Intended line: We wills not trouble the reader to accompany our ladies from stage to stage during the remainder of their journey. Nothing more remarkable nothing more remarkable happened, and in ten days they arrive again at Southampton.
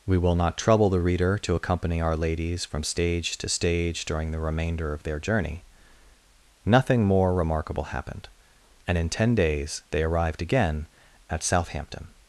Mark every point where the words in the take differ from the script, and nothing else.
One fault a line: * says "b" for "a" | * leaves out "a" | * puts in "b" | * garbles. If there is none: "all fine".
* says "will" for "wills"
* leaves out "nothing more remarkable"
* says "arrived" for "arrive"